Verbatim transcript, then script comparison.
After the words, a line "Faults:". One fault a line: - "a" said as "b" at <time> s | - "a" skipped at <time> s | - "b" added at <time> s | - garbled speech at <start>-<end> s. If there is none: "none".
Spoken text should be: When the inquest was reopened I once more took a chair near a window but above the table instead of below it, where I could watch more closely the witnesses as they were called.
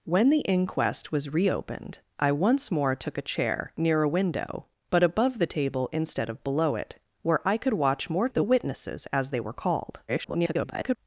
When the inquest was reopened I once more took a chair near a window but above the table instead of below it, where I could watch more the witnesses as they were called. [garbled]
Faults:
- "closely" skipped at 8.3 s
- garbled speech at 10.1-11.0 s